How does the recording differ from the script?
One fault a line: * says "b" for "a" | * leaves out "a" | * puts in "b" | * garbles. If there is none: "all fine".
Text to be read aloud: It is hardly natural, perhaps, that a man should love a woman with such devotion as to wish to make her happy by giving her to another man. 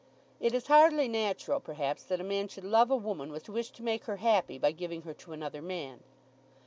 * leaves out "such devotion as"